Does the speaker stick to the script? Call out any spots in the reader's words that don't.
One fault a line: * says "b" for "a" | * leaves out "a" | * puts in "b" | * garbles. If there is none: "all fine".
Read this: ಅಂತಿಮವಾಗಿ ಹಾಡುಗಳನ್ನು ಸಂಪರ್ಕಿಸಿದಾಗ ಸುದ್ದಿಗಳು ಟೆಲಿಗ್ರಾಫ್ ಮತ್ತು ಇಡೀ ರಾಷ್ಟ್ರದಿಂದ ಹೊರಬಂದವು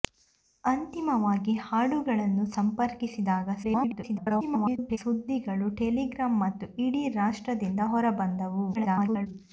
* garbles
* garbles